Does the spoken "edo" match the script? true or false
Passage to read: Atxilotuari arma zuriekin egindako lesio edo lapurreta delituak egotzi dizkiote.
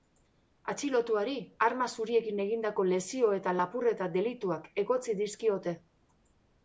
false